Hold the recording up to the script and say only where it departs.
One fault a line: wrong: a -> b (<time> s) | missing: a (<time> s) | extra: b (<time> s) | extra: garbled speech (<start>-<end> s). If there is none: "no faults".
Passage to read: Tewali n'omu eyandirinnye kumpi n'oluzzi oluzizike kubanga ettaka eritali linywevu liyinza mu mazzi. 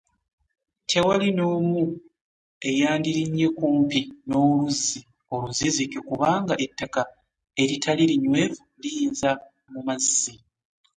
no faults